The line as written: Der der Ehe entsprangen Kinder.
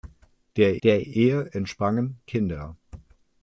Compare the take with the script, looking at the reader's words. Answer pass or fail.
pass